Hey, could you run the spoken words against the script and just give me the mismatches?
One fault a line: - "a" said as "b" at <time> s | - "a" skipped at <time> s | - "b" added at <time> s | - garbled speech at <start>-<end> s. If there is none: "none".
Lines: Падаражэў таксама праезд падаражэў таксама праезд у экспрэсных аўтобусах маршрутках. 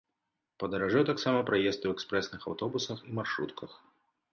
- "падаражэў таксама праезд" skipped at 1.9 s
- "і" added at 3.1 s